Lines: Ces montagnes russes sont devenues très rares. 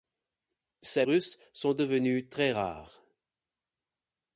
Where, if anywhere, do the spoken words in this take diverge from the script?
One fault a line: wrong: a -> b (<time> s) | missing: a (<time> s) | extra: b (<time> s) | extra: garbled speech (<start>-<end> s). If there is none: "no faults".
missing: montagnes (1.1 s)